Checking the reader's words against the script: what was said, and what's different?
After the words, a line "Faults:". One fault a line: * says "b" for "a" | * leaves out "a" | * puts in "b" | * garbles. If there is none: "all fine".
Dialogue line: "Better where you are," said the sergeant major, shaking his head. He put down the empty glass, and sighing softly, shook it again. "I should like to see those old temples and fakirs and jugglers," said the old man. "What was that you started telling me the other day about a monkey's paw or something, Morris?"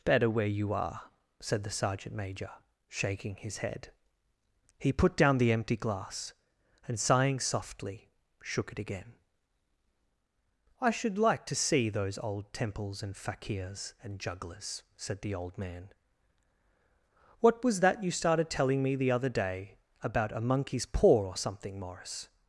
"Better where you are," said the sergeant major, shaking his head. He put down the empty glass, and sighing softly, shook it again. "I should like to see those old temples and fakirs and jugglers," said the old man. "What was that you started telling me the other day about a monkey's paw or something, Morris?"
Faults:
all fine